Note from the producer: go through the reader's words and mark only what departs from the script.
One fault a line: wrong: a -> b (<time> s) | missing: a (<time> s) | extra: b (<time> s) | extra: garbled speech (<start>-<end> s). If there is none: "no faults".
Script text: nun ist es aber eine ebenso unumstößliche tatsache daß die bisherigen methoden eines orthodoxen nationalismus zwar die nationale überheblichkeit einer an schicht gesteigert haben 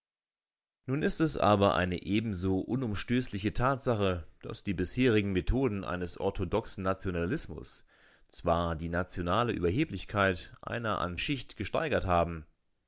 no faults